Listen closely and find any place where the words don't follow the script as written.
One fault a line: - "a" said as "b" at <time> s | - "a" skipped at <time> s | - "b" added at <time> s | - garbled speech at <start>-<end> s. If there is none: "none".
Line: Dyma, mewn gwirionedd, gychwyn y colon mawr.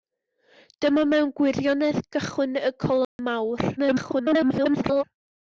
- garbled speech at 3.8-5.0 s